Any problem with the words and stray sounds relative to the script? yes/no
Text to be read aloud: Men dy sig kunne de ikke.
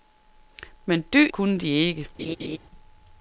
yes